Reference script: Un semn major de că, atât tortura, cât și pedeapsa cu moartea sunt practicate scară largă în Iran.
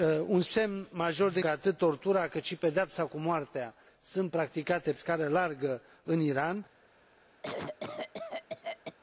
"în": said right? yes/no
yes